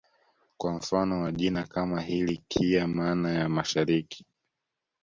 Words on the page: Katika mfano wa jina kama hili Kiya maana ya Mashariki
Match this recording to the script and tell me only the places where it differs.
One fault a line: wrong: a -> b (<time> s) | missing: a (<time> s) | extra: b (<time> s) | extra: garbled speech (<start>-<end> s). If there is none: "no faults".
wrong: Katika -> Kwa (0.6 s)